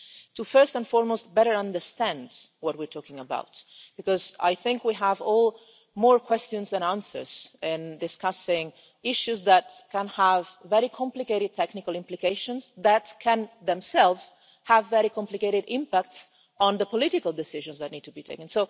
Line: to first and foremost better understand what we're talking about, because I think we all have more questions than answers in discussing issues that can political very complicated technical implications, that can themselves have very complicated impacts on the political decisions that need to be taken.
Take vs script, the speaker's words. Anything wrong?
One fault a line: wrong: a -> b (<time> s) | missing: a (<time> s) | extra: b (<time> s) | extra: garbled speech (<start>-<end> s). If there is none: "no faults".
wrong: political -> have (10.1 s)